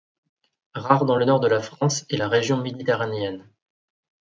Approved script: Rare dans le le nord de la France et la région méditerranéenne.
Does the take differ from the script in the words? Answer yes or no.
yes